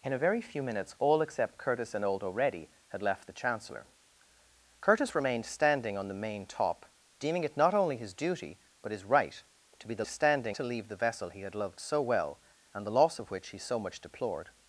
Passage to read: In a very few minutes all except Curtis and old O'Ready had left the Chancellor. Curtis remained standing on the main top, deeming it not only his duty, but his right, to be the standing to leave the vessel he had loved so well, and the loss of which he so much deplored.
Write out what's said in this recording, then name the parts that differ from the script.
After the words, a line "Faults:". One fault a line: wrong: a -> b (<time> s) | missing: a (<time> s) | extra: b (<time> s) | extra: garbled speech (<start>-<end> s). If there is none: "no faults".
In a very few minutes all except Curtis and old O'Ready had left the Chancellor. Curtis remained standing on the main top, deeming it not only his duty, but his right, to be the standing to leave the vessel he had loved so well, and the loss of which he so much deplored.
Faults:
no faults